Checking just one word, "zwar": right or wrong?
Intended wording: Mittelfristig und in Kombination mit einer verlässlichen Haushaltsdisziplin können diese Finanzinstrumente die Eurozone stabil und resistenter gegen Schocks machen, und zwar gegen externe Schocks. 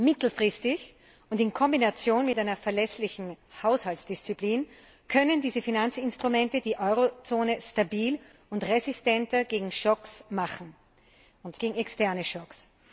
wrong